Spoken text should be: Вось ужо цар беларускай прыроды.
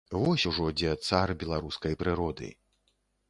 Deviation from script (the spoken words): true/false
true